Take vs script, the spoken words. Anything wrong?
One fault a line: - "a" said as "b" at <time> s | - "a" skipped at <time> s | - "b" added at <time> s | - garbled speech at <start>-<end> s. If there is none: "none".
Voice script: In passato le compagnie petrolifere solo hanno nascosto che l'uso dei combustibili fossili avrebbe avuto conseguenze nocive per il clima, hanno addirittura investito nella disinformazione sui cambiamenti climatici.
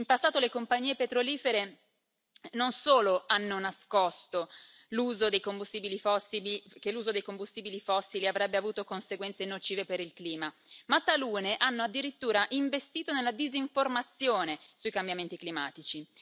- "non" added at 2.5 s
- "ma talune" added at 10.9 s